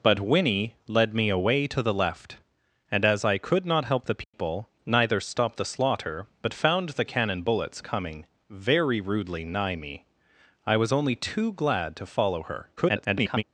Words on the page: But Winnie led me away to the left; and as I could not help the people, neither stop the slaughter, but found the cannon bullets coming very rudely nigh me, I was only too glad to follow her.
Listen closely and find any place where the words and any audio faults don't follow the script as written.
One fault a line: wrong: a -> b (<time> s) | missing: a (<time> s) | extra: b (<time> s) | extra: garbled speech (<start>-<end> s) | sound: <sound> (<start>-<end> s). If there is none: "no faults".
sound: dropout (4.2-4.3 s)
extra: garbled speech (12.8-13.4 s)